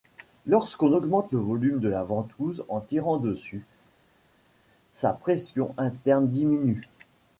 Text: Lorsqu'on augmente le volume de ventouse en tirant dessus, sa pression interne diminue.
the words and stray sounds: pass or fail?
fail